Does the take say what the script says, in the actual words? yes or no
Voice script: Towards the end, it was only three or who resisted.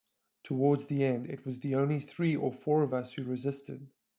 no